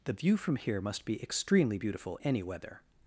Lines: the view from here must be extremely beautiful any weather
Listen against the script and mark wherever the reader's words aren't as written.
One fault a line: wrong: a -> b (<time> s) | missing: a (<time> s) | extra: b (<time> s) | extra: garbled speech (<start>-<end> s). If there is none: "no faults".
no faults